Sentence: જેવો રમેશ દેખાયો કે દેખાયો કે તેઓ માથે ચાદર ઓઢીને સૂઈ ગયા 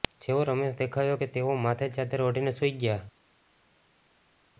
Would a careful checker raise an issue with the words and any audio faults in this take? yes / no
yes